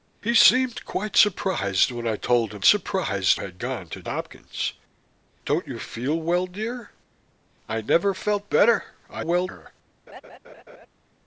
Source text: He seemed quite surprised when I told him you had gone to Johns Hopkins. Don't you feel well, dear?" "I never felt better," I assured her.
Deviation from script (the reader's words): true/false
true